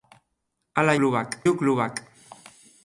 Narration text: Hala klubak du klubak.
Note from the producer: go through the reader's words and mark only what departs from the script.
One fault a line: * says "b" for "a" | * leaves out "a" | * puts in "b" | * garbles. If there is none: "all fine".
all fine